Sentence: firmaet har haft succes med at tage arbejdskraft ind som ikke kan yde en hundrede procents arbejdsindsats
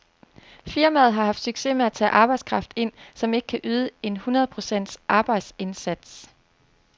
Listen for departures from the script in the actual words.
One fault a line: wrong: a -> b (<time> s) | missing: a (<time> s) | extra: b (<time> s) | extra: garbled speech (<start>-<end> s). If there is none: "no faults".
no faults